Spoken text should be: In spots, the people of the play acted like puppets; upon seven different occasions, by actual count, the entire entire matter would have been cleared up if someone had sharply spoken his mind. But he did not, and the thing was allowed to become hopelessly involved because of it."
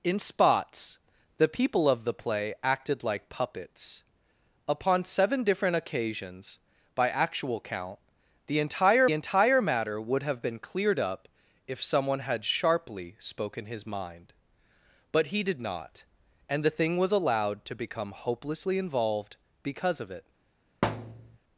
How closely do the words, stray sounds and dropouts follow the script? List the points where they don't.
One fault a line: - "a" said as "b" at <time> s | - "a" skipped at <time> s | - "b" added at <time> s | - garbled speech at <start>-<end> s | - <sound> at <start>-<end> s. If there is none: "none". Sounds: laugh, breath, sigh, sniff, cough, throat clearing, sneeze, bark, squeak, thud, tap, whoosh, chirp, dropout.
- thud at 20.8-21.4 s